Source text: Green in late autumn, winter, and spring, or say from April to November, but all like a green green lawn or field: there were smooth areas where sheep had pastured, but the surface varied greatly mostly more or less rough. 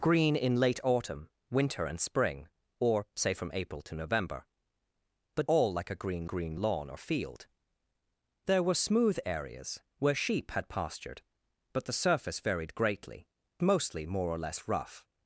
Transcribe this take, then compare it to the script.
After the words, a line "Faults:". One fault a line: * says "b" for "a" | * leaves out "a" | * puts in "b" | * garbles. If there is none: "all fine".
Green in late autumn, winter, and spring, or say from April to November, but all like a green green lawn or field: there were smooth areas where sheep had pastured, but the surface varied greatly mostly more or less rough.
Faults:
all fine